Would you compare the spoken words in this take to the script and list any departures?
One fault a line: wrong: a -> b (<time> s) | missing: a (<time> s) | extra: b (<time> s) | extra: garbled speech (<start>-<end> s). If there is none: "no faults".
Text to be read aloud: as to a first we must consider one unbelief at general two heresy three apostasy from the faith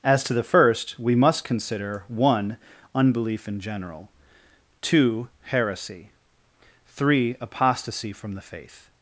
wrong: a -> the (0.3 s)
wrong: at -> in (3.5 s)